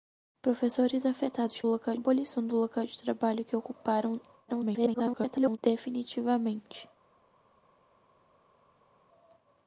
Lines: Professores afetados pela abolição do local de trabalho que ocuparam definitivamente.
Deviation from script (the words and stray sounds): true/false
true